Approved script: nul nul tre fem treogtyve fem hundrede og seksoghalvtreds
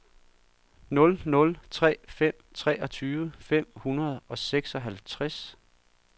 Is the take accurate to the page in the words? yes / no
yes